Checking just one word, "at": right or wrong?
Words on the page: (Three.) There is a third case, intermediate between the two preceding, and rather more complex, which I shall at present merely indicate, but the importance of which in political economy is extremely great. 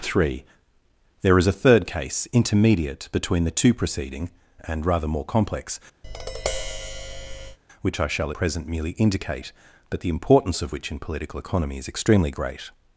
wrong